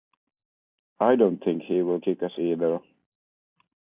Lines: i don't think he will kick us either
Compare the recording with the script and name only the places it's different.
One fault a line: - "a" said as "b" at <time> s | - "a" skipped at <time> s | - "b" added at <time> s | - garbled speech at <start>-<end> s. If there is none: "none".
none